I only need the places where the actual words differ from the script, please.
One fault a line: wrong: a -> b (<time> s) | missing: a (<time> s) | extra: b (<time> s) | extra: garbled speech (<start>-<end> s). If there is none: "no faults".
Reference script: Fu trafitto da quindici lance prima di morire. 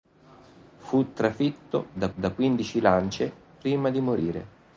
extra: da (2.1 s)